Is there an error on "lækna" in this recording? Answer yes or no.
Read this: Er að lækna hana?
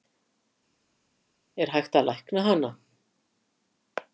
no